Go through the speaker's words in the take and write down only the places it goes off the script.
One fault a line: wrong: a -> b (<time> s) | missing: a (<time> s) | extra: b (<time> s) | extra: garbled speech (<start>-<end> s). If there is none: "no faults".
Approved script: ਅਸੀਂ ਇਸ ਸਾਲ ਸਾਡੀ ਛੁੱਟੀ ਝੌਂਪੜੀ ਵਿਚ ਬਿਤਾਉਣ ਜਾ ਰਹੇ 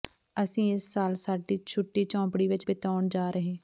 no faults